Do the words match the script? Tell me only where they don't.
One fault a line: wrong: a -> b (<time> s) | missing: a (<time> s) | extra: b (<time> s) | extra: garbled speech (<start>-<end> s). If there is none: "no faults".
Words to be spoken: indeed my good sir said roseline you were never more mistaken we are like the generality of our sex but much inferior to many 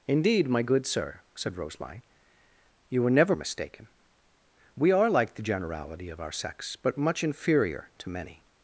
missing: more (3.4 s)